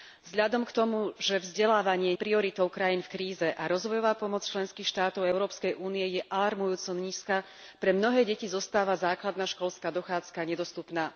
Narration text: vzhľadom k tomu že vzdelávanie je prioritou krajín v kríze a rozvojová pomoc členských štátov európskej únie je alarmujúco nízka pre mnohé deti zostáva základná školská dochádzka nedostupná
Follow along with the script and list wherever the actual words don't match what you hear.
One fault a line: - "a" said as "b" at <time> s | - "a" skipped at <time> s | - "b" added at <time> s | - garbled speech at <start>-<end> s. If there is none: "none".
none